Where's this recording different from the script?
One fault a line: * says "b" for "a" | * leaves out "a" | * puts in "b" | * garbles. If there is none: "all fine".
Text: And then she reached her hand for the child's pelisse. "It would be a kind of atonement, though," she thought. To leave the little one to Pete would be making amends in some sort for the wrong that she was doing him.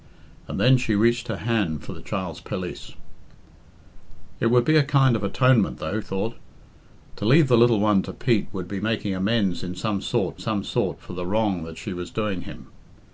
* leaves out "she"
* puts in "some sort"